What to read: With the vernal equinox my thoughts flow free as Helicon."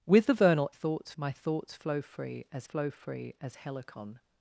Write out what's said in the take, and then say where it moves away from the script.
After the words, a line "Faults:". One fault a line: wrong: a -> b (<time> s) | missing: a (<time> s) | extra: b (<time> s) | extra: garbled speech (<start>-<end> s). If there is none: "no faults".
With the vernal thoughts my thoughts flow free as flow free as Helicon."
Faults:
wrong: equinox -> thoughts (0.7 s)
extra: flow free as (2.6 s)